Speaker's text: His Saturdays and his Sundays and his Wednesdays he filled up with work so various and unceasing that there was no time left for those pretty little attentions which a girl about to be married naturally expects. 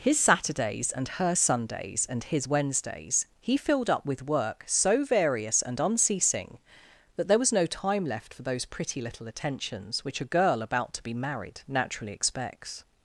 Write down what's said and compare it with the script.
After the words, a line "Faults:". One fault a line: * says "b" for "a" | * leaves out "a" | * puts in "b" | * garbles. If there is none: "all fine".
His Saturdays and her Sundays and his Wednesdays he filled up with work so various and unceasing that there was no time left for those pretty little attentions which a girl about to be married naturally expects.
Faults:
* says "her" for "his"